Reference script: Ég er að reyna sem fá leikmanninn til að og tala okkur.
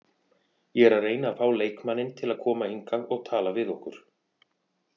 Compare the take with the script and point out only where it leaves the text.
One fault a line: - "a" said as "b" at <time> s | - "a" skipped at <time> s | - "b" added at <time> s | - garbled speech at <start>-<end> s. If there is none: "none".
- "sem" said as "að" at 1.3 s
- "koma hingað" added at 2.4 s
- "við" added at 3.6 s